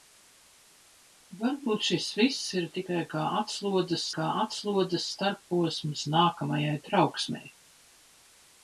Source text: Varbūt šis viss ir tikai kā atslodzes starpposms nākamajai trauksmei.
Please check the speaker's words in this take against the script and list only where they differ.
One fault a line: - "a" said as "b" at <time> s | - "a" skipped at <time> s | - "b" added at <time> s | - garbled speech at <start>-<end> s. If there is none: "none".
- "kā atslodzes" added at 4.2 s